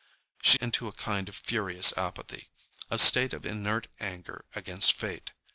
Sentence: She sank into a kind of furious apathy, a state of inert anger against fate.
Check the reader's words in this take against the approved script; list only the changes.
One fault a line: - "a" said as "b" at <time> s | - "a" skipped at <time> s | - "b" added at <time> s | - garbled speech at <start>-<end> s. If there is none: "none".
- "sank" skipped at 0.6 s